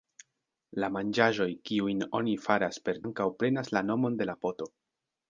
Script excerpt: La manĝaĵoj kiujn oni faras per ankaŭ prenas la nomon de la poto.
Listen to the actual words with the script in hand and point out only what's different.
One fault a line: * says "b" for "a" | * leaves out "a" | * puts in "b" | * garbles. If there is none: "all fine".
all fine